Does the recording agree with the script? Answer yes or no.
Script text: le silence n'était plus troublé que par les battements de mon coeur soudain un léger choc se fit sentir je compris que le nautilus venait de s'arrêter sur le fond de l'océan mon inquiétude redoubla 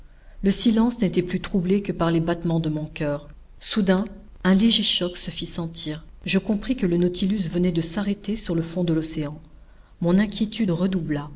yes